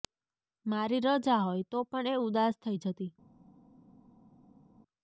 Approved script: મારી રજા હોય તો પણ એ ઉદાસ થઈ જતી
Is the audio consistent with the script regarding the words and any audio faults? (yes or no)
yes